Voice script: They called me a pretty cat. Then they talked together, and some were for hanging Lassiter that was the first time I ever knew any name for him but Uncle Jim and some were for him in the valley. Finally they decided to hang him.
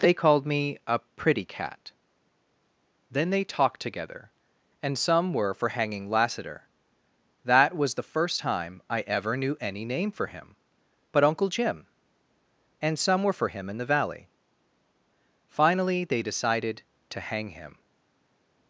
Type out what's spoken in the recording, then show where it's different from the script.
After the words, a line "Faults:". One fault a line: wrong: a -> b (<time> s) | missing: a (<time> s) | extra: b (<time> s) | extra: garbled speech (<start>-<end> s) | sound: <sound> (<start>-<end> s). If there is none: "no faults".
They called me a pretty cat. Then they talked together, and some were for hanging Lassiter that was the first time I ever knew any name for him but Uncle Jim and some were for him in the valley. Finally they decided to hang him.
Faults:
no faults